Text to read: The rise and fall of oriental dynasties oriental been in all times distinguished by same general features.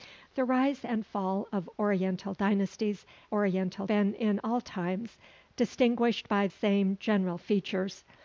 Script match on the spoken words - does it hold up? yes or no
yes